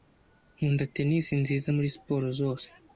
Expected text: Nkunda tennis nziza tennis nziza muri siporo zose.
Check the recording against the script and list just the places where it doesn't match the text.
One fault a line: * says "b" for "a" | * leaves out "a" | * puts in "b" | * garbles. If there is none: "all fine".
* leaves out "tennis nziza"